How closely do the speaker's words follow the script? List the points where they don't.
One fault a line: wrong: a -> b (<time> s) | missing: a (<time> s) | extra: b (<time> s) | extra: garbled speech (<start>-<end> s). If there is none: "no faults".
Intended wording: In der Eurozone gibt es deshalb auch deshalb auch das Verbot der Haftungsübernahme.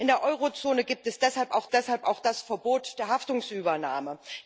no faults